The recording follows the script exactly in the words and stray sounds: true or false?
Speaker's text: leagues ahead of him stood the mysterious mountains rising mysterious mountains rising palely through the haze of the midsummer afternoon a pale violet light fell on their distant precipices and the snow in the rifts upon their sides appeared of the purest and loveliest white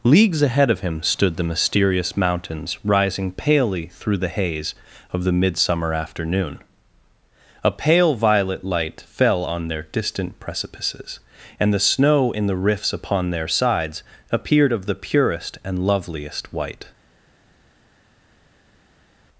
false